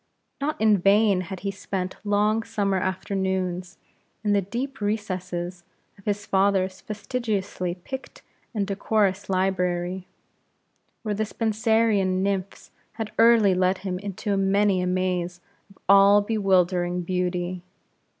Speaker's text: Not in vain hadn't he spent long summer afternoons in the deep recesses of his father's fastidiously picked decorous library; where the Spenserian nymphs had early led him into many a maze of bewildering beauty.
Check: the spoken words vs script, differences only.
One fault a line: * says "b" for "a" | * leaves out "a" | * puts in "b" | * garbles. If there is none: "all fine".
* says "had" for "hadn't"
* puts in "and"
* puts in "all"